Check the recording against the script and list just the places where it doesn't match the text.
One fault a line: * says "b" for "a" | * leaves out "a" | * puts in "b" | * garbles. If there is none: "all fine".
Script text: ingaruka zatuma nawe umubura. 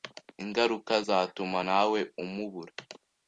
all fine